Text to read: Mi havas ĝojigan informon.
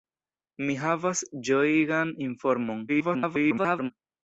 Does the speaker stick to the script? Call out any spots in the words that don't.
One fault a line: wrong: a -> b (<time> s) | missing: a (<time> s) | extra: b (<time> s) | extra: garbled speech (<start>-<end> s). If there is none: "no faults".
extra: garbled speech (2.9-3.9 s)